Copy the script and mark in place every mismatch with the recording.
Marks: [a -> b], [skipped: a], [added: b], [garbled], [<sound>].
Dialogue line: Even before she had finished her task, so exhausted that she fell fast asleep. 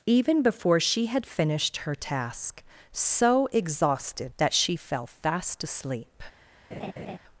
Even before she had finished her task, so exhausted that she fell fast asleep. [laugh]